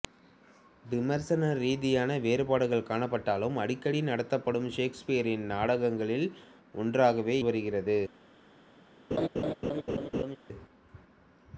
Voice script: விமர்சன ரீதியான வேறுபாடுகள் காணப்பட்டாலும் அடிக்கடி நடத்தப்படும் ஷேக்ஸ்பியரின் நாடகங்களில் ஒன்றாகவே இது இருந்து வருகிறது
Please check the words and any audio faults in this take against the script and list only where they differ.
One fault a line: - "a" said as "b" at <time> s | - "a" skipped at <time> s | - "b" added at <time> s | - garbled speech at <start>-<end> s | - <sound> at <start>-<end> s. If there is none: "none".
- "இது இருந்து" skipped at 7.4 s
- laugh at 9.1-10.4 s